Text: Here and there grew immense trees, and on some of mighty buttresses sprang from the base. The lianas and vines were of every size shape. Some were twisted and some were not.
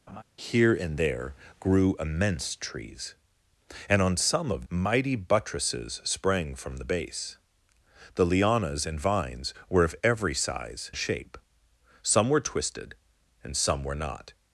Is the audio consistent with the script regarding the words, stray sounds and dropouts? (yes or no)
no